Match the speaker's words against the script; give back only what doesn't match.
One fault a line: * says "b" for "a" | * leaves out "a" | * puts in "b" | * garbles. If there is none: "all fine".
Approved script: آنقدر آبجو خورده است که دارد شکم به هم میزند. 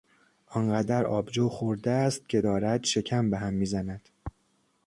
all fine